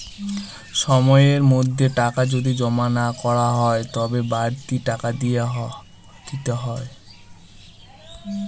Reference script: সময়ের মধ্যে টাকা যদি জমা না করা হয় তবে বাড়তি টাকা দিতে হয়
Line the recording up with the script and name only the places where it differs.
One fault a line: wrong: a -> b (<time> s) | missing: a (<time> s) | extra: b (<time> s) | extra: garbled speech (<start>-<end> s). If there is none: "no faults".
no faults